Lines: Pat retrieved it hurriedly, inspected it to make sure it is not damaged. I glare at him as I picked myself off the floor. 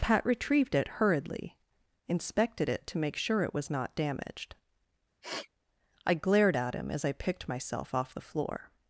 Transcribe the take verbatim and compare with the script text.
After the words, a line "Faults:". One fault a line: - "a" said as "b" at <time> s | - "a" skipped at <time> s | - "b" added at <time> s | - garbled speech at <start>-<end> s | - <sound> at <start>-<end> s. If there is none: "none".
Pat retrieved it hurriedly, inspected it to make sure it was not damaged. I glared at him as I picked myself off the floor.
Faults:
- "is" said as "was" at 3.5 s
- sniff at 5.2-5.5 s
- "glare" said as "glared" at 6.1 s